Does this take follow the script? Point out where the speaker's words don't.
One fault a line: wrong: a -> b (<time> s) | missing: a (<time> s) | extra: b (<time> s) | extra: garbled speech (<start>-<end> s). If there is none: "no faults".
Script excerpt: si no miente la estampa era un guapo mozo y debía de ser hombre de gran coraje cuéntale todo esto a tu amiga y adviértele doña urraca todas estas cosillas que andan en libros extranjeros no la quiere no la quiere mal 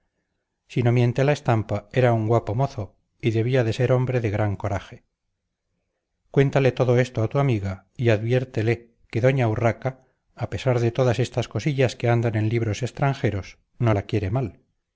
extra: que (9.1 s)
extra: a pesar de (10.3 s)
missing: no la quiere (14.3 s)